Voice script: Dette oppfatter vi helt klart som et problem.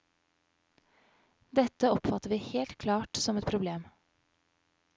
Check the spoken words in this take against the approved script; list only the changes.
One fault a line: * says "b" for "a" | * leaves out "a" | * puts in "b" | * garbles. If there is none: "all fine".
all fine